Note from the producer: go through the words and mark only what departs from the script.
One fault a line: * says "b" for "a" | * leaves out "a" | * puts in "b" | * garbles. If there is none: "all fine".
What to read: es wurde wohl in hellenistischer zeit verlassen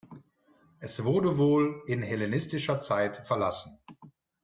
all fine